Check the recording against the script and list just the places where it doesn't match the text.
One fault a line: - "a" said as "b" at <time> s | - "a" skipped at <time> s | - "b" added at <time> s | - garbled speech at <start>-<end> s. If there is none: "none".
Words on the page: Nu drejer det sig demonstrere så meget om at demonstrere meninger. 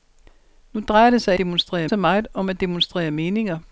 none